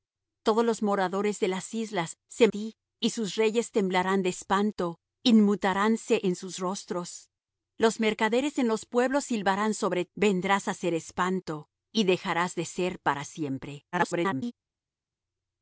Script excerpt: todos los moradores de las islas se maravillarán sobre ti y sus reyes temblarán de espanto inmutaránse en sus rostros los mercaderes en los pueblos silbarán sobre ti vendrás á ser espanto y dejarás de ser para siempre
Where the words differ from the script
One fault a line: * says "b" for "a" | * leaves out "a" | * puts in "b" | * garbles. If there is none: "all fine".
* leaves out "maravillarán sobre"
* leaves out "ti"
* garbles